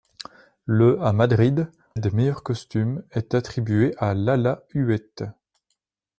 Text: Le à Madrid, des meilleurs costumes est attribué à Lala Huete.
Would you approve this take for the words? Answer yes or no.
yes